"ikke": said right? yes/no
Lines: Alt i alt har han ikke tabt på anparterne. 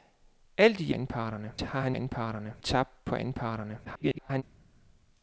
no